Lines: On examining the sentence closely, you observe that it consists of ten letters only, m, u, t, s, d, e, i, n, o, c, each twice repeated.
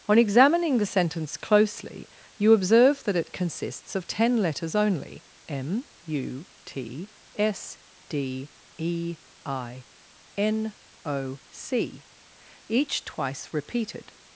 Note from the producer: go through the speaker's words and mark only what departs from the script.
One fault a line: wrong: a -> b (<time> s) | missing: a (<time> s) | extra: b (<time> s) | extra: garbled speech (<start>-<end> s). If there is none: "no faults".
no faults